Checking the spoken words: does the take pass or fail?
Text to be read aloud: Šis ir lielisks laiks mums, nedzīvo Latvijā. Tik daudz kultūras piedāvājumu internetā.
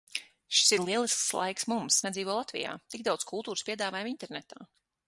pass